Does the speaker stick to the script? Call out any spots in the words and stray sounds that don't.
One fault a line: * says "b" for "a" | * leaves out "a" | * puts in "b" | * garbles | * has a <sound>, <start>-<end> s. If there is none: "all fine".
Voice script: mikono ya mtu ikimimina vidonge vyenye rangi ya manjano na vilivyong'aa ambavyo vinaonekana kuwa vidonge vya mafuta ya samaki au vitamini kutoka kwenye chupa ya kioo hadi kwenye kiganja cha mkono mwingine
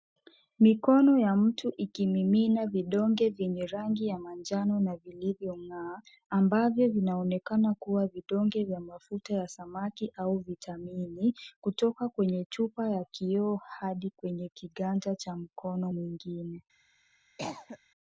* has a cough, 17.4-17.8 s